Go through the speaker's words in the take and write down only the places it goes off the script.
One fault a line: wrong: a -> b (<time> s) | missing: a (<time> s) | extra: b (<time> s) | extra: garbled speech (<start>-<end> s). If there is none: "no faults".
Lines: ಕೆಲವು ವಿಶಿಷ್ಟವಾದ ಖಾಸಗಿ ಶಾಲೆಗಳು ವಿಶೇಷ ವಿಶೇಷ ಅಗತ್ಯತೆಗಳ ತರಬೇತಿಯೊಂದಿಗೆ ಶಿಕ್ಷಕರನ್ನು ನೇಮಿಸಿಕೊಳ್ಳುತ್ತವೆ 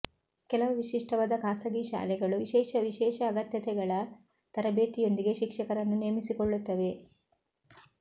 no faults